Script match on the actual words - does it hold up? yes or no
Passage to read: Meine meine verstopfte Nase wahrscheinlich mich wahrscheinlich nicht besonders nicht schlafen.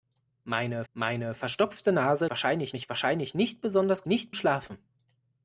yes